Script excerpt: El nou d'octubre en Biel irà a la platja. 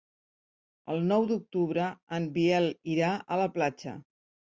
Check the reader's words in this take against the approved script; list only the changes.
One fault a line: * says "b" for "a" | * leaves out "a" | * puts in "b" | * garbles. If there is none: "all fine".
all fine